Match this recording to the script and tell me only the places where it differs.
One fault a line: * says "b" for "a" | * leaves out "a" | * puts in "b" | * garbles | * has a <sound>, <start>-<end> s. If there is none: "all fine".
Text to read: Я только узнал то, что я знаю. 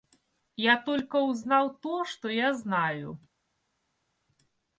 all fine